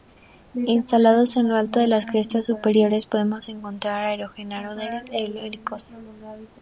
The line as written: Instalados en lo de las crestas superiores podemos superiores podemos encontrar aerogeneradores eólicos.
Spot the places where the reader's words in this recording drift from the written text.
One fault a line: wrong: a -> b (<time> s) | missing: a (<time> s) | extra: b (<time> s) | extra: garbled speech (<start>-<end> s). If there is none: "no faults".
extra: alto (1.6 s)
missing: superiores podemos (3.5 s)